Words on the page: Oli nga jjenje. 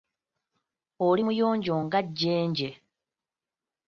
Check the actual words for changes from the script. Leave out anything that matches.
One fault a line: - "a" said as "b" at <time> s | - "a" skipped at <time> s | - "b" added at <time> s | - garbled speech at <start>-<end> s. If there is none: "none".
- "muyonjo" added at 1.2 s